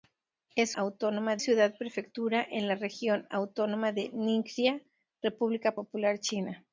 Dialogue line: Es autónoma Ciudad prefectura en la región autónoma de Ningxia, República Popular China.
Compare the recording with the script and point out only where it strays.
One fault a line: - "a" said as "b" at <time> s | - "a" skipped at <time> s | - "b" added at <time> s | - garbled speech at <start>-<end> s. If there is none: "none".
none